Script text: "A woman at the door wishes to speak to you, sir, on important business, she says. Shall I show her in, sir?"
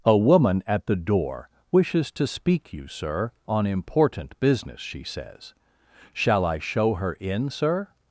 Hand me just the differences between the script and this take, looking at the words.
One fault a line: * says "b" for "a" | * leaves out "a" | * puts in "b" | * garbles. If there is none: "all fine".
* leaves out "to"